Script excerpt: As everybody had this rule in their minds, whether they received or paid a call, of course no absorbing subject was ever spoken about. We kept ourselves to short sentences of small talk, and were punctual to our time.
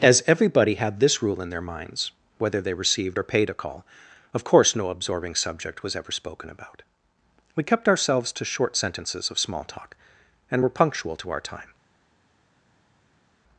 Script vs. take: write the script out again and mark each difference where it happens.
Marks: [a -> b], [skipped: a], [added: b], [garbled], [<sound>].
As everybody had this rule in their minds, whether they received or paid a call, of course no absorbing subject was ever spoken about. We kept ourselves to short sentences of small talk, and were punctual to our time.